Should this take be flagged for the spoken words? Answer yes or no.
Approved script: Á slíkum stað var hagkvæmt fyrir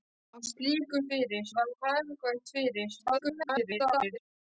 yes